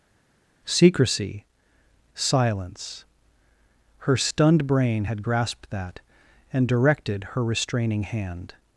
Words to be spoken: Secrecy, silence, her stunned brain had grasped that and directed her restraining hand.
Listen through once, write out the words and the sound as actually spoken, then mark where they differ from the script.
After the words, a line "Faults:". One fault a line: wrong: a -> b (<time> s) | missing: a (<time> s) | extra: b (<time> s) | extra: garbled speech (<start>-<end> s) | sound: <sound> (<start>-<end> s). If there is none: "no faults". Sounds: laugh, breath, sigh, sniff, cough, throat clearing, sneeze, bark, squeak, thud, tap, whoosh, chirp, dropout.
Secrecy, silence, her stunned brain had grasped that and directed her restraining hand.
Faults:
no faults